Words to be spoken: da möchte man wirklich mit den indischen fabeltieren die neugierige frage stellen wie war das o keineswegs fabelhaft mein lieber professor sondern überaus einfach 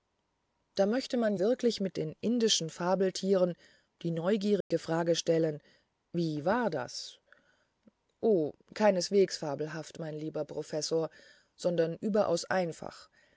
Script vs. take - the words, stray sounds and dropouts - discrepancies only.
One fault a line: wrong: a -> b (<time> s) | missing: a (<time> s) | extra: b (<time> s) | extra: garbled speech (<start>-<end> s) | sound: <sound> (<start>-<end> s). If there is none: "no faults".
sound: dropout (4.6-4.7 s)